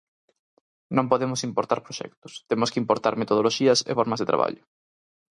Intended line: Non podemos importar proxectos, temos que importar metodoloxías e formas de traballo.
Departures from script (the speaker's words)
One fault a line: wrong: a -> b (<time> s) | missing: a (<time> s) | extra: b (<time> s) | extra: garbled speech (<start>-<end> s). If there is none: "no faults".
no faults